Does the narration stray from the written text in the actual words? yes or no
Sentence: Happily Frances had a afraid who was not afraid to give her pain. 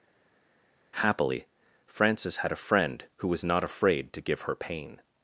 yes